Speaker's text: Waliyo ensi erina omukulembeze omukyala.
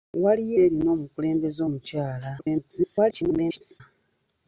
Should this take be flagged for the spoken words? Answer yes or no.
yes